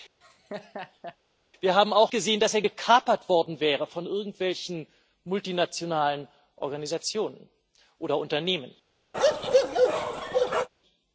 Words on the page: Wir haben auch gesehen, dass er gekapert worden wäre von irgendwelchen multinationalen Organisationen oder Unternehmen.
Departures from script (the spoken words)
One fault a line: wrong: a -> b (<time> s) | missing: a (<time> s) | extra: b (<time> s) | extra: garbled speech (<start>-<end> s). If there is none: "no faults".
no faults